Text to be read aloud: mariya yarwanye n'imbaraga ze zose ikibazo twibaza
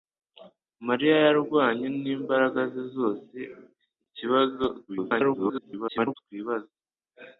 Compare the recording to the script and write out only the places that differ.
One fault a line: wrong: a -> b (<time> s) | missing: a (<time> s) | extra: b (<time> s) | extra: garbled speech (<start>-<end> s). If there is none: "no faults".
extra: garbled speech (4.9-6.1 s)